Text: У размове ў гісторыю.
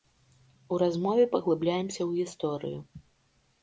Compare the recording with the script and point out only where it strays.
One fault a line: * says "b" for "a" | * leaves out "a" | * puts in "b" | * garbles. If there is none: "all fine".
* puts in "паглыбляемся"